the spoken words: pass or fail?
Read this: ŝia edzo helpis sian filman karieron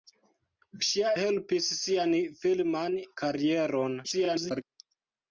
fail